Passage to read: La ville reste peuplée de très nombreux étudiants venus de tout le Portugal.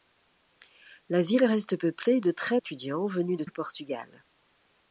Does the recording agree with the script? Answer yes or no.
no